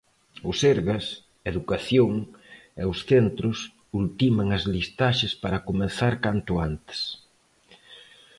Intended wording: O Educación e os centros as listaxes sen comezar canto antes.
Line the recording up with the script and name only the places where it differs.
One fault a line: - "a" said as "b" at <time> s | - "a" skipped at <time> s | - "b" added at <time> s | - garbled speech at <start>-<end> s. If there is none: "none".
- "Sergas" added at 0.6 s
- "ultiman" added at 4.0 s
- "sen" said as "para" at 5.4 s